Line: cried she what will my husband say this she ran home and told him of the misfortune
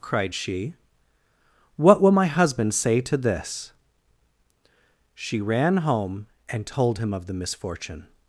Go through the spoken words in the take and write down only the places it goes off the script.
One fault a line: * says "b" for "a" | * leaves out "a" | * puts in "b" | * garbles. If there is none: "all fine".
* puts in "to"